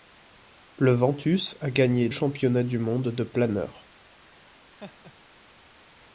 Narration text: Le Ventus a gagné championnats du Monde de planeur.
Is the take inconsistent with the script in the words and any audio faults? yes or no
yes